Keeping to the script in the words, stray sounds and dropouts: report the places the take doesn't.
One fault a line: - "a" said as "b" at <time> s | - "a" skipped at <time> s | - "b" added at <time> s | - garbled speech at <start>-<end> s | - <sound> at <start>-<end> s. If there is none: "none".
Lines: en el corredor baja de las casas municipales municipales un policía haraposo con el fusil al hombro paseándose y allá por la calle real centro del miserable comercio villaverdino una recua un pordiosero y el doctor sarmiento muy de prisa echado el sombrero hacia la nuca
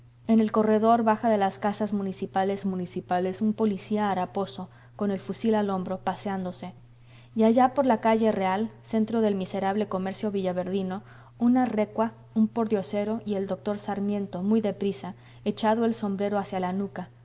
none